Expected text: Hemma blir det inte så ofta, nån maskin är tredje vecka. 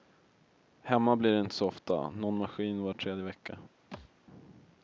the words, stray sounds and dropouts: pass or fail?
fail